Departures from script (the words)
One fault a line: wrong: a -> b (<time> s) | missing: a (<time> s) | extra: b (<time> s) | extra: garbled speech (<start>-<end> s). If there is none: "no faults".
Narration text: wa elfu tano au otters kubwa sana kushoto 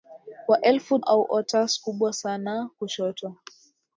missing: tano (1.0 s)